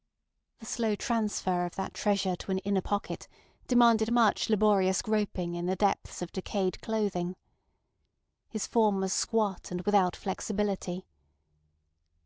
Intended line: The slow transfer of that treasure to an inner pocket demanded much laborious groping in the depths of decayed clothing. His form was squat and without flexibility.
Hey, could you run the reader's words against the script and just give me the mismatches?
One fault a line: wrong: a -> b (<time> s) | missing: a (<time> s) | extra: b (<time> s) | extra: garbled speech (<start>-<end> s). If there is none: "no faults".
no faults